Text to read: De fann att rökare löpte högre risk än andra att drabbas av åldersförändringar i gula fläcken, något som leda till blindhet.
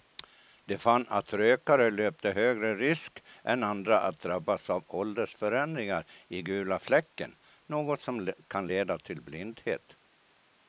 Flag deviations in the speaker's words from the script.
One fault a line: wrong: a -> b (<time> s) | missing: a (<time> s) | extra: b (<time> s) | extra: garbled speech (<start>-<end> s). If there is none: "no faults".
extra: kan (8.5 s)